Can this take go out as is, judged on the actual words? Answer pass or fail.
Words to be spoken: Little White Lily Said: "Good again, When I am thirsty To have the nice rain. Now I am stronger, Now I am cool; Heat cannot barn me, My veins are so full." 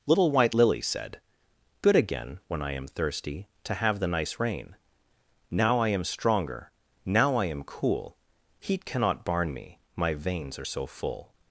pass